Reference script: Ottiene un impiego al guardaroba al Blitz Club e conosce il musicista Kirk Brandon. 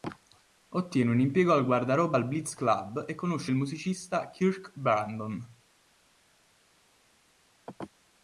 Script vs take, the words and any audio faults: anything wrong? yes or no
no